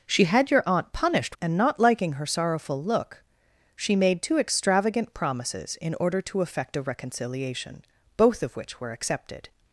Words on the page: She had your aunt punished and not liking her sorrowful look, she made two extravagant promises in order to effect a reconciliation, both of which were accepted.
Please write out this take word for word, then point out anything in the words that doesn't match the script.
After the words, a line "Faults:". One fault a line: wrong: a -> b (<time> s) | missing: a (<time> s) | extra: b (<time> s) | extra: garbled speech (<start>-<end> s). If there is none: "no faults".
She had your aunt punished and not liking her sorrowful look, she made two extravagant promises in order to effect a reconciliation, both of which were accepted.
Faults:
no faults